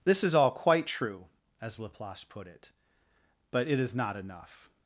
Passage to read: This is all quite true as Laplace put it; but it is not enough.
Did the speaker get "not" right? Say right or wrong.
right